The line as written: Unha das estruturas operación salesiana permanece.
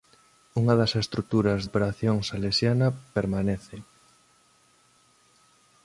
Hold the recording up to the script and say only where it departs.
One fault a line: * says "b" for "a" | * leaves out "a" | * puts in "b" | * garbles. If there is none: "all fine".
all fine